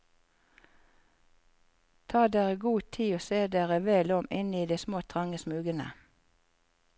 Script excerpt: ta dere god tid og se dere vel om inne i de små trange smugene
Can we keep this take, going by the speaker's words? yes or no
yes